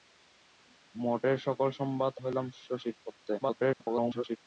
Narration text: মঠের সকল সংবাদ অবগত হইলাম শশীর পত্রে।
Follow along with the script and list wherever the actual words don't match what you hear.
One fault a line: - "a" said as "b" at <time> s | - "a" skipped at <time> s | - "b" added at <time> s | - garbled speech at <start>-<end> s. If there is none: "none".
- "অবগত" skipped at 2.1 s
- garbled speech at 3.4-4.4 s